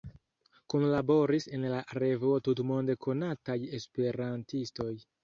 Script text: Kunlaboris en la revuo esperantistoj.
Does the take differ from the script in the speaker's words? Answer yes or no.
yes